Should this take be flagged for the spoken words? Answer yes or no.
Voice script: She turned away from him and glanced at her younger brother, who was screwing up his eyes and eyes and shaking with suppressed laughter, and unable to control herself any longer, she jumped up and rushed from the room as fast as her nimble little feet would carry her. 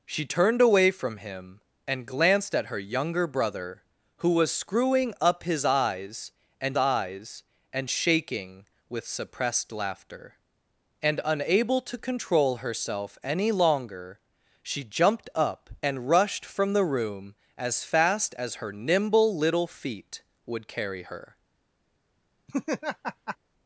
no